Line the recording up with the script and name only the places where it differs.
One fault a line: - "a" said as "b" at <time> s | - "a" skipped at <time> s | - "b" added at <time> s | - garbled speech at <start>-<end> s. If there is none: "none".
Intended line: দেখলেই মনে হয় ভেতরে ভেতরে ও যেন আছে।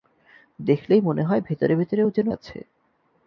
none